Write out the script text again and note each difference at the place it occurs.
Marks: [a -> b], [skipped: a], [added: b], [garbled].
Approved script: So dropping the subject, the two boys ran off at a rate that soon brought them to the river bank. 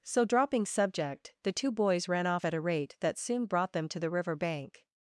So dropping [skipped: the] subject, the two boys ran off at a rate that soon brought them to the river bank.